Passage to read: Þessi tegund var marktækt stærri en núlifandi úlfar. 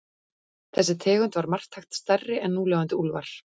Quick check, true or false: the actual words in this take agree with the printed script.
true